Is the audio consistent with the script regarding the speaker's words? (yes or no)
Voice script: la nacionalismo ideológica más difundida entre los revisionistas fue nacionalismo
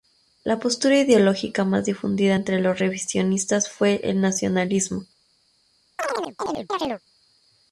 no